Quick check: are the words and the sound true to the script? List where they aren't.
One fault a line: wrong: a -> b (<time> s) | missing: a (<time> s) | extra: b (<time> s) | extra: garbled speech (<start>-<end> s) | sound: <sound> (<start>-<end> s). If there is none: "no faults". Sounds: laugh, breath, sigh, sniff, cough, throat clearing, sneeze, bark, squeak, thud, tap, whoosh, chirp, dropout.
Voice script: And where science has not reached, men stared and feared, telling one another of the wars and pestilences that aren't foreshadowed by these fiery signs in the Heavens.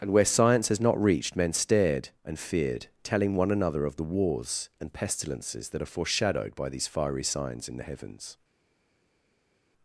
wrong: aren't -> are (5.8 s)